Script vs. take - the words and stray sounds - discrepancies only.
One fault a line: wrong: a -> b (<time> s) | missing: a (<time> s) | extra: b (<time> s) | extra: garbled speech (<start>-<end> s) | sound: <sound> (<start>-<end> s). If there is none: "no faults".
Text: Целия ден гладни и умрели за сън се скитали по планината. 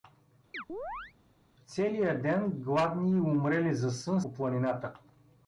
sound: chirp (0.5-1.1 s)
missing: се скитали (4.2 s)